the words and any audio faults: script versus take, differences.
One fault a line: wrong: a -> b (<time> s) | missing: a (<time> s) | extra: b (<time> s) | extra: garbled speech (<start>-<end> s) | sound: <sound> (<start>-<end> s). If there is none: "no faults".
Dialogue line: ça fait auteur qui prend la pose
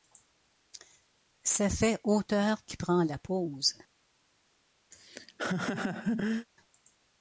sound: laugh (4.9-6.5 s)